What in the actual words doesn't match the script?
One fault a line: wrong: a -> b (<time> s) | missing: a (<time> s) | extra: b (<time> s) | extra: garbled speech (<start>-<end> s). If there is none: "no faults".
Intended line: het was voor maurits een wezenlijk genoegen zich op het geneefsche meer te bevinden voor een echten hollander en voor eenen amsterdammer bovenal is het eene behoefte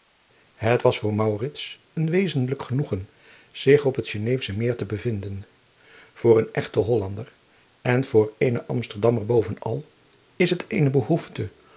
no faults